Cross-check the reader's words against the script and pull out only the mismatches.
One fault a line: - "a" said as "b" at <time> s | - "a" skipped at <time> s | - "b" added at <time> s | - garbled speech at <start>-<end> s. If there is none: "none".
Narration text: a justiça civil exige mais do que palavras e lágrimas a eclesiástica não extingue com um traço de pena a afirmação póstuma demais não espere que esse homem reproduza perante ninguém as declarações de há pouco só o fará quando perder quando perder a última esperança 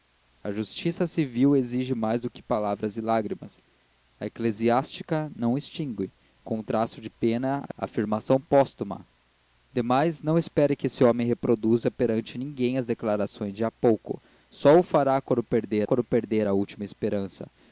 none